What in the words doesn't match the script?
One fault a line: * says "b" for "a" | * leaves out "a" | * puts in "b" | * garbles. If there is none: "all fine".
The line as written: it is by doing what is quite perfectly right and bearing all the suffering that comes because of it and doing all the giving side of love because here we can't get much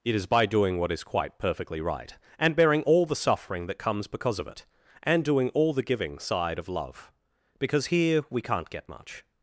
all fine